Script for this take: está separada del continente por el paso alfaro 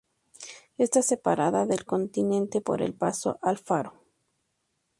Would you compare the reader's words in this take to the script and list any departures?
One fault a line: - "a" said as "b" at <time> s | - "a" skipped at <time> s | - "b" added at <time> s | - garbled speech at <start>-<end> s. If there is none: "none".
none